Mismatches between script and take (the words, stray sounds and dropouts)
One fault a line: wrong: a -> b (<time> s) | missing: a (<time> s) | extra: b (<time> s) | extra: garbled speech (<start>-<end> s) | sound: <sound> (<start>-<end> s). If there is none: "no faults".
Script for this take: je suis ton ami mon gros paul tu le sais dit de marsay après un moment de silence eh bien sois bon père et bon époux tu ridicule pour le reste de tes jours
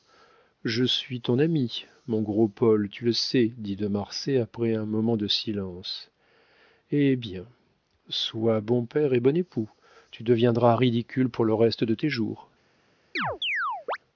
extra: deviendras (10.2 s)
sound: chirp (13.2-14.0 s)